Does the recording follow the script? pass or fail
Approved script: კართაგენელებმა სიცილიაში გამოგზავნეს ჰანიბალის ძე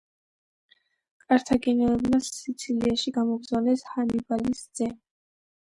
pass